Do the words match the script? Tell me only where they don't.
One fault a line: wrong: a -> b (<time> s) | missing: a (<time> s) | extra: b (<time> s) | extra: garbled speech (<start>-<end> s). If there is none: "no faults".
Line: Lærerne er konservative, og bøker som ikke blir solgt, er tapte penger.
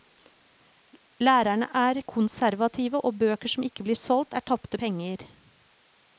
no faults